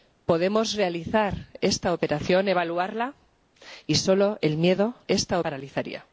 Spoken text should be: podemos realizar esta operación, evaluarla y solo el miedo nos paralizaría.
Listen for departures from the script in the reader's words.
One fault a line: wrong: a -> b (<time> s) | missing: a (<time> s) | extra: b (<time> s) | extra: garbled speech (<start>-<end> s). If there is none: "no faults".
wrong: nos -> esta (5.1 s)